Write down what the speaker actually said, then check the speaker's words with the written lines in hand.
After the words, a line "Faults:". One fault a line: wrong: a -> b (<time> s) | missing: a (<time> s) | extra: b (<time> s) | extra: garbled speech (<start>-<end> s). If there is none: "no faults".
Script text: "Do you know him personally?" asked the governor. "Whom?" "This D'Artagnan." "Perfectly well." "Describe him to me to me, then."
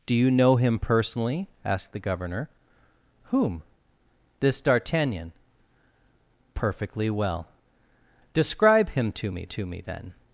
"Do you know him personally?" asked the governor. "Whom?" "This D'Artagnan." "Perfectly well." "Describe him to me to me, then."
Faults:
no faults